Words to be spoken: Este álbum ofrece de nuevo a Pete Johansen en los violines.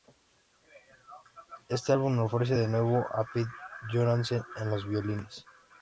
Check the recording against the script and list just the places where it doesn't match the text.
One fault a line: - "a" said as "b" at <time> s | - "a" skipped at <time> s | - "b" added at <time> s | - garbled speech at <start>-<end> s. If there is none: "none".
none